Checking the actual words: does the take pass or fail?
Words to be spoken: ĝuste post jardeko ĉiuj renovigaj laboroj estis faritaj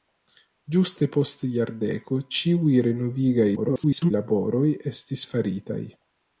fail